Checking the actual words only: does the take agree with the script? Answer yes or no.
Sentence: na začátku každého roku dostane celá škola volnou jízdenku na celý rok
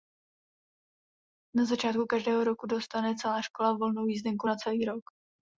yes